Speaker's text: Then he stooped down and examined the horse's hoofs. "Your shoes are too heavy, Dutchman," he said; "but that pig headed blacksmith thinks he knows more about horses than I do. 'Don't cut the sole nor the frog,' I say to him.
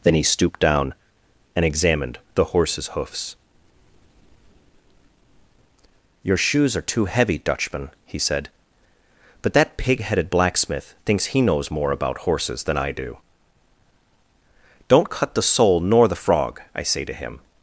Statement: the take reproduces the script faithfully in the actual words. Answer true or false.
true